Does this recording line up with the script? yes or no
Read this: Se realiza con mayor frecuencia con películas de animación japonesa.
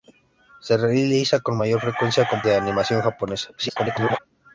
no